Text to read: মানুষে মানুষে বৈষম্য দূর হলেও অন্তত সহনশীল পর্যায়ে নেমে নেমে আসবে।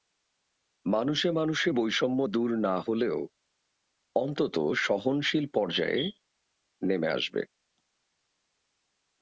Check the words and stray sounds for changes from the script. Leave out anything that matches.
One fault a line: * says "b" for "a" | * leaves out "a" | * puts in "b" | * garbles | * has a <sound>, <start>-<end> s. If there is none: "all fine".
* puts in "না"
* leaves out "নেমে"